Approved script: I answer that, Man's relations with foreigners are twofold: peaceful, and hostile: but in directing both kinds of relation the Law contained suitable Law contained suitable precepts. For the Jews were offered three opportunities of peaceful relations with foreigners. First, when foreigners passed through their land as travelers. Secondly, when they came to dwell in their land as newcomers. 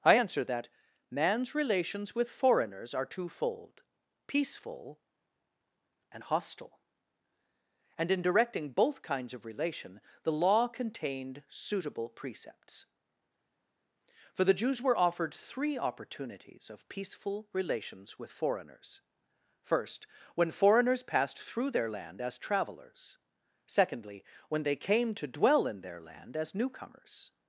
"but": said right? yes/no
no